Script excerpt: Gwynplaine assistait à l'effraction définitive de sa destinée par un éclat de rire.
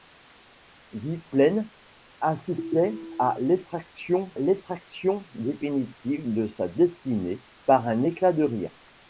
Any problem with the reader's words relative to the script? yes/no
yes